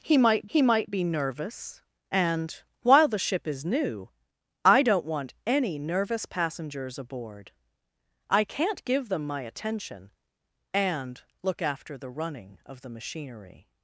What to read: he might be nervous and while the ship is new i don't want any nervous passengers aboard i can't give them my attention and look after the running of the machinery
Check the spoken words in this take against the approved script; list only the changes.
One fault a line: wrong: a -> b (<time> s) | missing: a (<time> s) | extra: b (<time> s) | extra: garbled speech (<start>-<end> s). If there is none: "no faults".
extra: he might (0.5 s)